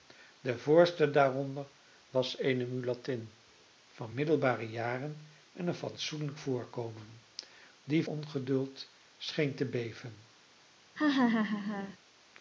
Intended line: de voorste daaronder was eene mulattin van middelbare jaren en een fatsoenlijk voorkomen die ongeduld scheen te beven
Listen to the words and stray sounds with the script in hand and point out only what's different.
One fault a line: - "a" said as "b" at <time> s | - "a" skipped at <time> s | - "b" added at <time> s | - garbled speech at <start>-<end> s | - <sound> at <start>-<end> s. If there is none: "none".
- laugh at 11.0-12.0 s